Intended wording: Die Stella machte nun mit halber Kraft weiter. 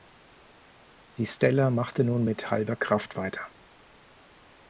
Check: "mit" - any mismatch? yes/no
no